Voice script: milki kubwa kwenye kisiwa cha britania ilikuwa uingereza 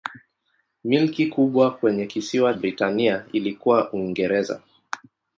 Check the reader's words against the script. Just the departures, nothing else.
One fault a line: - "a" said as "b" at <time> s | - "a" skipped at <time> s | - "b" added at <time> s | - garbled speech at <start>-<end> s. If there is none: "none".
- "cha" skipped at 2.5 s